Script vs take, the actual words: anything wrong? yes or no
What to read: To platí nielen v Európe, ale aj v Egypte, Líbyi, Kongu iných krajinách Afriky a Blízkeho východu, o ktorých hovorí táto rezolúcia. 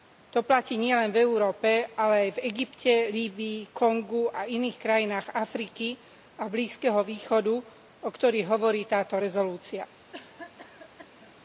yes